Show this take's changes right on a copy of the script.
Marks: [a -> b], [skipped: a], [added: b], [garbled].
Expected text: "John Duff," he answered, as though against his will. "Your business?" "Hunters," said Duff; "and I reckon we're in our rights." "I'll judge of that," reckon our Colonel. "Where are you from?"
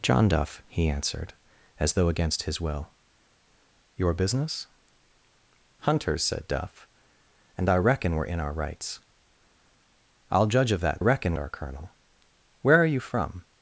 "John Duff," he answered, as though against his will. "Your business?" "Hunters," said Duff; "and I reckon we're in our rights." "I'll judge of that," reckon our Colonel. "Where are you from?"